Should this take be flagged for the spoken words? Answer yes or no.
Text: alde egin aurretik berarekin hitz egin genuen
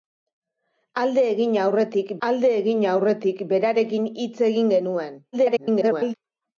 yes